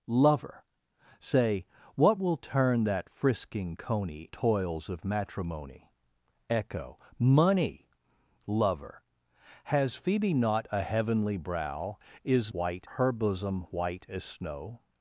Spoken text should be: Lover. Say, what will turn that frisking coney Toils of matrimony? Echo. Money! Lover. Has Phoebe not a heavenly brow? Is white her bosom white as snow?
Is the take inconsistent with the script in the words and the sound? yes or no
no